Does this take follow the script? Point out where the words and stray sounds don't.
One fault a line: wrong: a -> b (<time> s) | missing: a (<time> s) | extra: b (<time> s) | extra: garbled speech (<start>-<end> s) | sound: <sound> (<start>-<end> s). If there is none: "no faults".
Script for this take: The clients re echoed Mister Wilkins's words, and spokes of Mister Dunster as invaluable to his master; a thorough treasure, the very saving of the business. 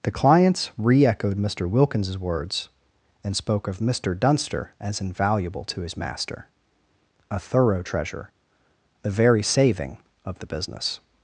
wrong: spokes -> spoke (3.4 s)